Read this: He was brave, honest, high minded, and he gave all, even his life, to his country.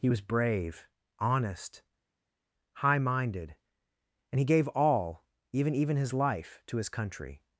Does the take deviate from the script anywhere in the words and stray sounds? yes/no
yes